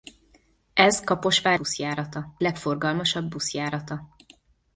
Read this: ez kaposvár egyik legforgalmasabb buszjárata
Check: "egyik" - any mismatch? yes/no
yes